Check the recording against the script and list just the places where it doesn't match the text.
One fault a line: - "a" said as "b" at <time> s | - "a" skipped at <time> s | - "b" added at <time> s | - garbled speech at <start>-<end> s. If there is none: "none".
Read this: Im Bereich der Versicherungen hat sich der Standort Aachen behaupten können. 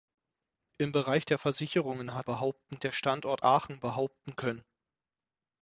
- "sich" said as "behaupten" at 2.3 s